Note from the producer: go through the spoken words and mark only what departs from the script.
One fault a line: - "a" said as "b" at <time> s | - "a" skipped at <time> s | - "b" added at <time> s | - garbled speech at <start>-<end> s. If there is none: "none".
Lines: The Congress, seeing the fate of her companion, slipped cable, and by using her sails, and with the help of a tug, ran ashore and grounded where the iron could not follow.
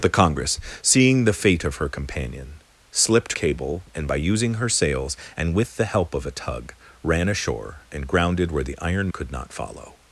none